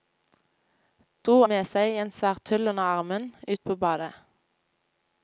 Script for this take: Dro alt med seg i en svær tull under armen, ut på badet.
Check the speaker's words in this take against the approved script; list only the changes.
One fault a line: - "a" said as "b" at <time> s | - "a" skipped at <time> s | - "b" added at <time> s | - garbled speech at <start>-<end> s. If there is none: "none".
- "alt" skipped at 1.4 s